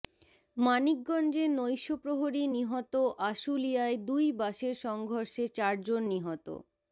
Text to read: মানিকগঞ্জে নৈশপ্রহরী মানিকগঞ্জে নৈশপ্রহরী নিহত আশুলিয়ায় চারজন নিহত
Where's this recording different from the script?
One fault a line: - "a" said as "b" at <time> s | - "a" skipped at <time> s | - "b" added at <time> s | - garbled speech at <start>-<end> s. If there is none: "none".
- "মানিকগঞ্জে নৈশপ্রহরী নিহত আশুলিয়ায়" said as "নিহত আশুলিয়ায় দুই বাসের সংঘর্ষে" at 2.5 s